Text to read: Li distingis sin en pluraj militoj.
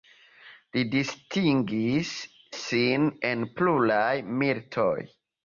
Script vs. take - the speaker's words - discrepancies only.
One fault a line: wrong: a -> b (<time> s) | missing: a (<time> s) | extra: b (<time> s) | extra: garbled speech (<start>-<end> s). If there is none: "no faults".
no faults